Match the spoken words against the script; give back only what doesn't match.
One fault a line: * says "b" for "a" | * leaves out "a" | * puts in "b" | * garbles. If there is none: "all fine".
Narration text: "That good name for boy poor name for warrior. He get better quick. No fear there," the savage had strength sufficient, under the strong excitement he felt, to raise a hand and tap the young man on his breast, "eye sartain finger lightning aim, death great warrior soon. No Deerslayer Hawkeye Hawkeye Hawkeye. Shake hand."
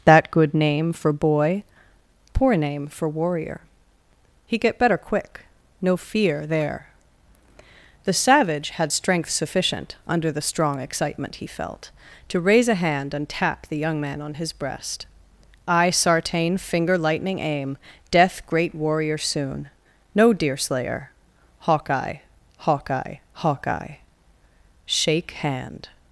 all fine